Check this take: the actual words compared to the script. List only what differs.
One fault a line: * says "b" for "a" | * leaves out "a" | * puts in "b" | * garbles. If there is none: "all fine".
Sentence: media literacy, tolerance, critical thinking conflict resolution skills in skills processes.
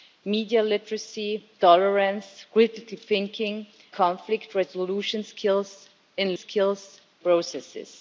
all fine